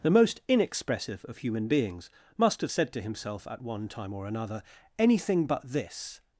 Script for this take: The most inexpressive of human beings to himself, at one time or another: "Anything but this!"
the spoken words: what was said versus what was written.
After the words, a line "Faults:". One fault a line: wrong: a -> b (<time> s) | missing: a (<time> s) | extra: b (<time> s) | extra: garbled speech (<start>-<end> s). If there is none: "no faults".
The most inexpressive of human beings must have said to himself, at one time or another: "Anything but this!"
Faults:
extra: must have said (2.4 s)